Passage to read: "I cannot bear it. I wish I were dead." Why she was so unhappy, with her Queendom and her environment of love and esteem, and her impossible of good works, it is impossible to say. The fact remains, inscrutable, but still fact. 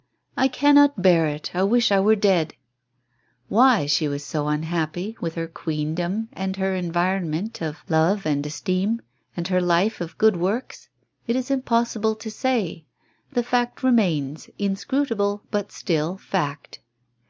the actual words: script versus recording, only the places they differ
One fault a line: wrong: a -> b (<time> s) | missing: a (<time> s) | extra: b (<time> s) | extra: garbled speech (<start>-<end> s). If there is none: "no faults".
wrong: impossible -> life (9.6 s)